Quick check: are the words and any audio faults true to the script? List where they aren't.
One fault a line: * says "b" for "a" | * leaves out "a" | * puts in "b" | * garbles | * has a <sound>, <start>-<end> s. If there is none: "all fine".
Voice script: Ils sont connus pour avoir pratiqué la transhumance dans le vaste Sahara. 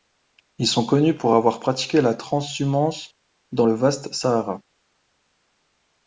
all fine